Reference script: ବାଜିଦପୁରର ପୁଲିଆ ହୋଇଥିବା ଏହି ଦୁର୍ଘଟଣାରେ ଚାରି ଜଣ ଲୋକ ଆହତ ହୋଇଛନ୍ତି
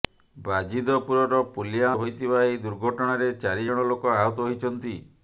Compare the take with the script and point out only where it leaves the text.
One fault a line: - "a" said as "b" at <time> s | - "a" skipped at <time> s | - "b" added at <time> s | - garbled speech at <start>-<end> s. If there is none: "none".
none